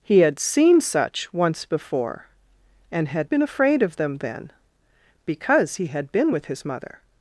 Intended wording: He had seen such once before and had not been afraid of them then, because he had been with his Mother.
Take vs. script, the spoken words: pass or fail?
fail